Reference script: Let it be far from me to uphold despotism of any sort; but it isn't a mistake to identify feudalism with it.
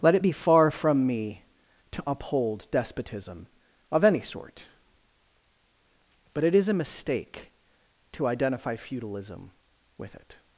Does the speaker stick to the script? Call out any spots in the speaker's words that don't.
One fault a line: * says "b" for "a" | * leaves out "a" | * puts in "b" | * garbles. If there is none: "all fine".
* says "is" for "isn't"